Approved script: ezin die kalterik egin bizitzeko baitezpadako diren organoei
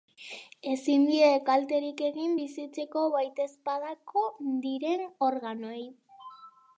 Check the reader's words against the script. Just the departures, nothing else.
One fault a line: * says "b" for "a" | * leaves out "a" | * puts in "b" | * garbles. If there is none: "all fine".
all fine